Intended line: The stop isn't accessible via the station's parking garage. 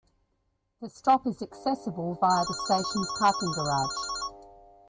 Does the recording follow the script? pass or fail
fail